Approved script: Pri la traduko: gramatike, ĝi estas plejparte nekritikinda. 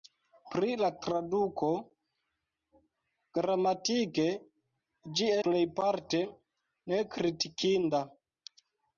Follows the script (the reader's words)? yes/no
no